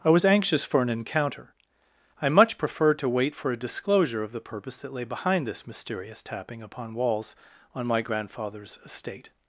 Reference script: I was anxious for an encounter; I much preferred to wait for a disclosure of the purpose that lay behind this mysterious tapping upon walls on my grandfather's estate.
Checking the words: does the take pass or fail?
pass